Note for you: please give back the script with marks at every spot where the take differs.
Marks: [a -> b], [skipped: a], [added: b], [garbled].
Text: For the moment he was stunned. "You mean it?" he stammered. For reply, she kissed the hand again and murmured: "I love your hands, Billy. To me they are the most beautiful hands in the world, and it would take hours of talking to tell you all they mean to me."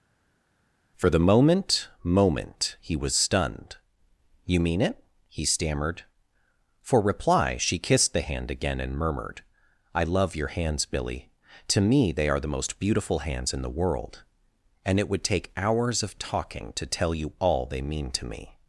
For the moment [added: moment] he was stunned. "You mean it?" he stammered. For reply, she kissed the hand again and murmured: "I love your hands, Billy. To me they are the most beautiful hands in the world, and it would take hours of talking to tell you all they mean to me."